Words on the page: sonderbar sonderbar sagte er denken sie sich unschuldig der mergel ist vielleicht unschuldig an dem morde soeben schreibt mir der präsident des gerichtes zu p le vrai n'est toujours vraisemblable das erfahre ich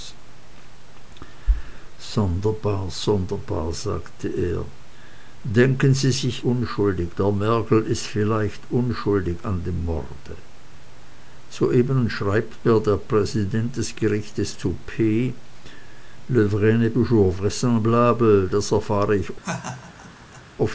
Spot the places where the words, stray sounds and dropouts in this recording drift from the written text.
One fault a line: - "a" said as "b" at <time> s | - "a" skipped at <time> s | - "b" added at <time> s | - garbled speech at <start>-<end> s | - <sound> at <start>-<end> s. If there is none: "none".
- laugh at 19.4-20.4 s